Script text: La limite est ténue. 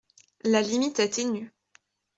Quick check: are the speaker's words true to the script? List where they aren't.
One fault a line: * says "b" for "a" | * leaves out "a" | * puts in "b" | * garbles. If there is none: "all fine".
all fine